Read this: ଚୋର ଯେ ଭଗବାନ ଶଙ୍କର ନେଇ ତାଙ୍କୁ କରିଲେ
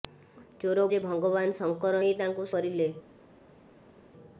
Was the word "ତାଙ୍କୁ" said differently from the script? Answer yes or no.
no